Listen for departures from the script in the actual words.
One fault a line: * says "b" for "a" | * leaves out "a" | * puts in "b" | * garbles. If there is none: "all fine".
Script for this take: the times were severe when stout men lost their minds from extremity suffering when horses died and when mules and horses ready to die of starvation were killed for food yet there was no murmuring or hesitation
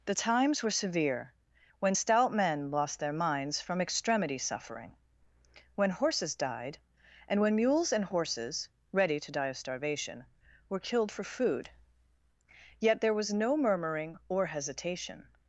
all fine